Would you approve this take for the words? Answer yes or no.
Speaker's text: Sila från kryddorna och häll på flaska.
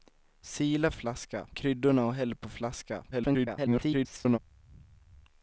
no